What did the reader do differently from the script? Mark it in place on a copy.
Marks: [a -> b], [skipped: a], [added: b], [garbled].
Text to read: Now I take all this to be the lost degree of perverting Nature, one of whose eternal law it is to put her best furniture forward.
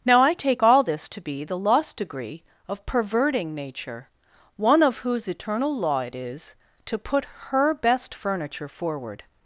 Now I take all this to be the lost degree of perverting Nature, one of whose eternal law it is to put her best furniture forward.